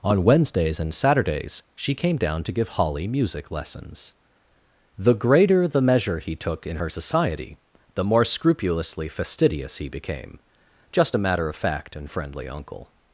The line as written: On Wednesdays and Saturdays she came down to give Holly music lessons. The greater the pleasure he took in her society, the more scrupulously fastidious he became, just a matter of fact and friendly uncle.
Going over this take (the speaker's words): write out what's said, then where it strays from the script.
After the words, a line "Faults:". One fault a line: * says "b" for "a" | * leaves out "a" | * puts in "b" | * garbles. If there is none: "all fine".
On Wednesdays and Saturdays she came down to give Holly music lessons. The greater the measure he took in her society, the more scrupulously fastidious he became, just a matter of fact and friendly uncle.
Faults:
* says "measure" for "pleasure"